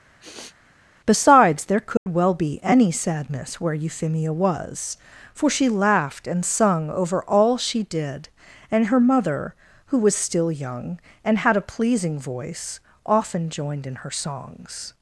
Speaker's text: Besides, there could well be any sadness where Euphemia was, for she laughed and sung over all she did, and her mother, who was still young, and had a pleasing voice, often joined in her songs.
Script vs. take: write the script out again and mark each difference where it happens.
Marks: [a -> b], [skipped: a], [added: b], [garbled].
Besides, there could well be any sadness where Euphemia was, for she laughed and sung over all she did, and her mother, who was still young, and had a pleasing voice, often joined in her songs.